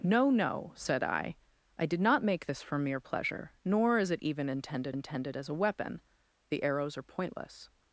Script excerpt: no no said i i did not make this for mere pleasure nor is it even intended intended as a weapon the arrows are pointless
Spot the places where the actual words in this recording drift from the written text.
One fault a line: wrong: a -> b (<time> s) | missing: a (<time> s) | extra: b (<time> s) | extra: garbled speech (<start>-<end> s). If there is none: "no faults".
no faults